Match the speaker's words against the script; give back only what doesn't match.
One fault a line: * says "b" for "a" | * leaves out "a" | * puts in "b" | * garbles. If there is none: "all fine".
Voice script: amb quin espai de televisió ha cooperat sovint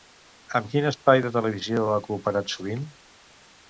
all fine